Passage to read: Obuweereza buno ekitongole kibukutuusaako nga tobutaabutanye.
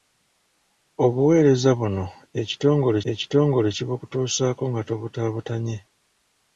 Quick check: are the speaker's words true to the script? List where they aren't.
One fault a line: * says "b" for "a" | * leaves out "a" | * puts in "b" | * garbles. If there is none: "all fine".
* puts in "ekitongole"